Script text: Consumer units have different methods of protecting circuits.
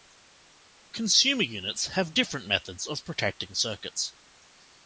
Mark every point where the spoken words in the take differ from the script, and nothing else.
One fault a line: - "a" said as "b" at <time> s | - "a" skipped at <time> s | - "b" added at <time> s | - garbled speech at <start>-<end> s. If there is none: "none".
none